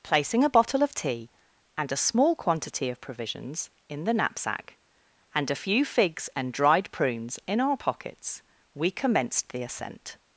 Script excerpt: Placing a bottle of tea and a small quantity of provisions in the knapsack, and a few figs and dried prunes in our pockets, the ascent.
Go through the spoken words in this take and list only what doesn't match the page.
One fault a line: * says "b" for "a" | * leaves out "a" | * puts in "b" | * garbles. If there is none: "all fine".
* puts in "we commenced"